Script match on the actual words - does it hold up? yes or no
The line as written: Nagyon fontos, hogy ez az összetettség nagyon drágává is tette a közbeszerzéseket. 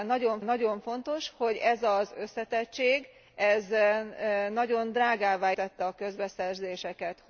no